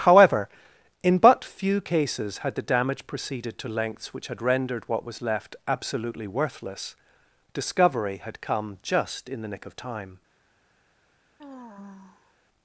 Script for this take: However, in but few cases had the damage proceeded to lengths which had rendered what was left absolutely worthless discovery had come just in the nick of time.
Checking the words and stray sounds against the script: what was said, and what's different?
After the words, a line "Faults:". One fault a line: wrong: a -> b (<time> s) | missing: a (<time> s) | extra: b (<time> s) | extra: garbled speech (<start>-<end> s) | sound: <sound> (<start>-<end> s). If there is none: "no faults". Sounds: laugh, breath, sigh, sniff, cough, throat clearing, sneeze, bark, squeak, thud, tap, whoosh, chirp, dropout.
However, in but few cases had the damage proceeded to lengths which had rendered what was left absolutely worthless discovery had come just in the nick of time.
Faults:
sound: sigh (11.4-12.3 s)